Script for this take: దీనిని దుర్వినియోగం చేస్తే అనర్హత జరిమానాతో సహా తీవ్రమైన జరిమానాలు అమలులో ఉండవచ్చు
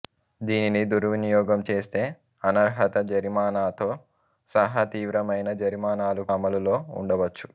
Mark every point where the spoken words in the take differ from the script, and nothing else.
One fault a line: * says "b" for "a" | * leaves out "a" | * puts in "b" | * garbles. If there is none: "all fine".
all fine